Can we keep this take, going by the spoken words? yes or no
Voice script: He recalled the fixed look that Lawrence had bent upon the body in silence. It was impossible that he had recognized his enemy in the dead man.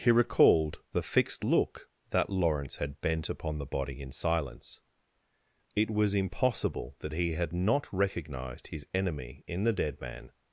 no